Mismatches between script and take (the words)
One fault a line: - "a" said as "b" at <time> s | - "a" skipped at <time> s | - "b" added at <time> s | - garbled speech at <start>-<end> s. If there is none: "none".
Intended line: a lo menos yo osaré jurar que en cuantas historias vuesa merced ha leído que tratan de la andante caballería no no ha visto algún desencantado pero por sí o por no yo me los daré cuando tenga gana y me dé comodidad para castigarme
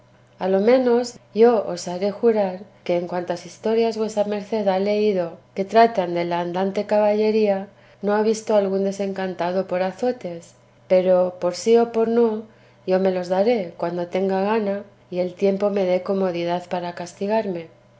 - "no" skipped at 8.2 s
- "por azotes" added at 9.7 s
- "el tiempo" added at 15.2 s